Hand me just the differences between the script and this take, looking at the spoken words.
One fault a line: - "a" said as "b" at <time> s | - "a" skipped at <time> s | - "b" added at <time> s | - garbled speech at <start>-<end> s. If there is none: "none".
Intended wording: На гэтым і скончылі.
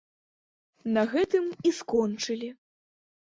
none